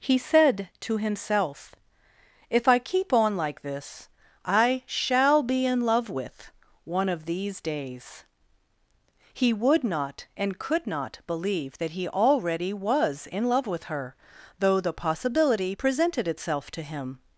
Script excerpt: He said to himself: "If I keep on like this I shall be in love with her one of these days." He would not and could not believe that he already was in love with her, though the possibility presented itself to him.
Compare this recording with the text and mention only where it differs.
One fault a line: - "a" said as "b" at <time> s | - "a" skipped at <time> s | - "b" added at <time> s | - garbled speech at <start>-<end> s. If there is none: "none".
- "her" skipped at 6.5 s